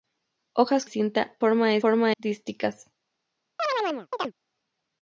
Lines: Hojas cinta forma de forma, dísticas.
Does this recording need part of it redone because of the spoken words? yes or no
no